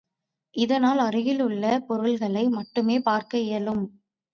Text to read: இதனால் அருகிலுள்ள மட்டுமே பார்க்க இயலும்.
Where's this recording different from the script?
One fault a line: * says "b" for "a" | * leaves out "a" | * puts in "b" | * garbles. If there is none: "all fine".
* puts in "பொருள்களை"